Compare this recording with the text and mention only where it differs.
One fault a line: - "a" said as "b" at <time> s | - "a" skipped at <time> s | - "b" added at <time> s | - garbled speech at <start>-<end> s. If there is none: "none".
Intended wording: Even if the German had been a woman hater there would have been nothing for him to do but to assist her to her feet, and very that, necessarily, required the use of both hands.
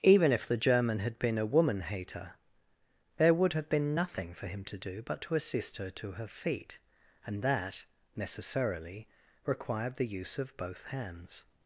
- "very" skipped at 7.4 s